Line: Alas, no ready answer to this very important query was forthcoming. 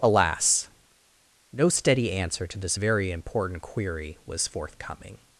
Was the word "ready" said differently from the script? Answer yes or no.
yes